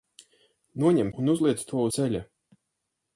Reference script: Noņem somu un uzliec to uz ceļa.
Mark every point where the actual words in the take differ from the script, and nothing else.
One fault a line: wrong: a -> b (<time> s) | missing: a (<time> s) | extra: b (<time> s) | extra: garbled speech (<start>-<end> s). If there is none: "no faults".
missing: somu (1.1 s)
missing: uz (1.9 s)